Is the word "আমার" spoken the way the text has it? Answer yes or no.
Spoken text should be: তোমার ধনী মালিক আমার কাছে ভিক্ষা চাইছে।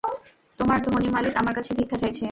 yes